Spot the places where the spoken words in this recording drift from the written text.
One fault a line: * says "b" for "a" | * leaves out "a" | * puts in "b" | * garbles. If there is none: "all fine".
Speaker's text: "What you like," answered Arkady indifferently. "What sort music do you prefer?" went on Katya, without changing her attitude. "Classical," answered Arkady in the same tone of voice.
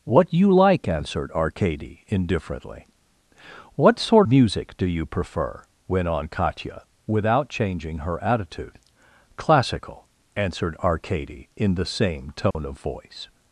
all fine